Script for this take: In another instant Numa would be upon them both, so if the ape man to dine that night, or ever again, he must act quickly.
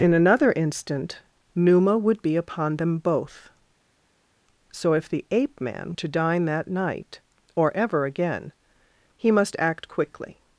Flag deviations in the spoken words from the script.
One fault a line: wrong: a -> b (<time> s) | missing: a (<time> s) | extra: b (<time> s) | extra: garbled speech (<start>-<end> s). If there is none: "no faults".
no faults